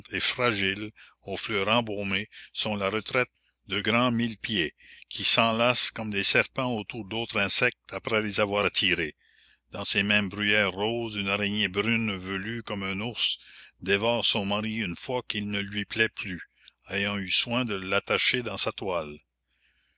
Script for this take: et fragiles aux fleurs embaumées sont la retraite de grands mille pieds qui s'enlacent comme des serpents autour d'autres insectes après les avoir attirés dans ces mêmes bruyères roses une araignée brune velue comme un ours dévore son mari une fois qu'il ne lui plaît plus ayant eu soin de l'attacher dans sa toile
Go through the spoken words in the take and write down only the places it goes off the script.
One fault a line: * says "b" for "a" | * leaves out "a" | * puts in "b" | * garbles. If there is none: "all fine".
all fine